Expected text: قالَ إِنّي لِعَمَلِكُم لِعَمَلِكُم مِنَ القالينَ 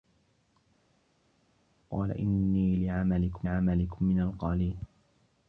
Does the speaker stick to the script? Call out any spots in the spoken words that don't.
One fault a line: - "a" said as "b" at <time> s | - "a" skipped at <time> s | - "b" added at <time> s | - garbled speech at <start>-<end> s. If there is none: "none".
none